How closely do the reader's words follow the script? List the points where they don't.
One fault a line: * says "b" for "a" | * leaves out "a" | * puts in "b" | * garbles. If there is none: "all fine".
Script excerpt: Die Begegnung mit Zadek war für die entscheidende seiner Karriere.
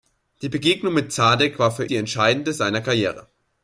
all fine